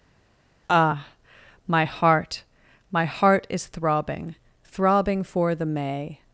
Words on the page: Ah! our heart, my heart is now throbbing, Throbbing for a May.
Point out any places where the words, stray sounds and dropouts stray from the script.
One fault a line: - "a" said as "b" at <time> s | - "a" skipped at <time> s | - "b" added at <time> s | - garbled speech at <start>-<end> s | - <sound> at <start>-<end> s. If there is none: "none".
- "our" said as "my" at 1.7 s
- "now" skipped at 3.7 s
- "a" said as "the" at 5.5 s